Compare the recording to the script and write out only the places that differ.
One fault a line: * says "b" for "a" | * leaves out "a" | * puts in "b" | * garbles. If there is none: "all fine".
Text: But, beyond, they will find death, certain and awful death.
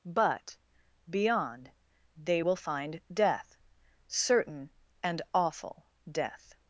all fine